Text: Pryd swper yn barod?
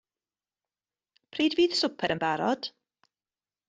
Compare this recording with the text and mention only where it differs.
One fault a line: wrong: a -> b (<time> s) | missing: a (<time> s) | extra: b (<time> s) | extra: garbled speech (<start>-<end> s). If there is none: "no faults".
extra: fydd (1.6 s)